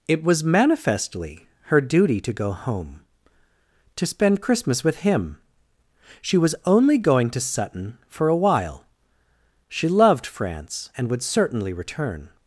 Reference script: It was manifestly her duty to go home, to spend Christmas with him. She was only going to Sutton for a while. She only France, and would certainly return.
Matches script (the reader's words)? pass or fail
fail